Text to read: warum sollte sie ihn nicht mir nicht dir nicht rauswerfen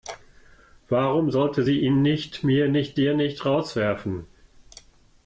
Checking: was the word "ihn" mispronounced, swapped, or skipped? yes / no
no